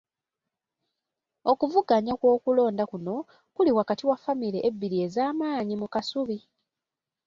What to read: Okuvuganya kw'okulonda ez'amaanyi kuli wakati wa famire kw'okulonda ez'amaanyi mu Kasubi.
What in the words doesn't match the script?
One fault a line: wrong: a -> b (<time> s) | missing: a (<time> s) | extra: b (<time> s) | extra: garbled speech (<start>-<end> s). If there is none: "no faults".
wrong: ez'amaanyi -> kuno (2.9 s)
wrong: kw'okulonda -> ebbiri (4.7 s)